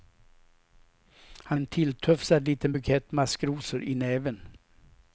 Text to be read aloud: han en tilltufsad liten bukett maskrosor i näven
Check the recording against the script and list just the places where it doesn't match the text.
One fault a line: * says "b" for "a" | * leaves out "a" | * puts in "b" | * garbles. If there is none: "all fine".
all fine